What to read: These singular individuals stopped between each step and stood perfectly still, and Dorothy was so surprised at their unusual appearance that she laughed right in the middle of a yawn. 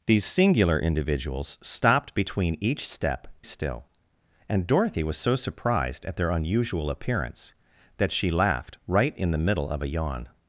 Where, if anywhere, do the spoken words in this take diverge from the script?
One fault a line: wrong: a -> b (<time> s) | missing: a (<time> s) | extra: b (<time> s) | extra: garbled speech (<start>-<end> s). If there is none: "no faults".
missing: and stood perfectly (3.3 s)